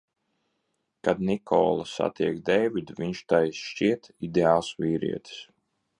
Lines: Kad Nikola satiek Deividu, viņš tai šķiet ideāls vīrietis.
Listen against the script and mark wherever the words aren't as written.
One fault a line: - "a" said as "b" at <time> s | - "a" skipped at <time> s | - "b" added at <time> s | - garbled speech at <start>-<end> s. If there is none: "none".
none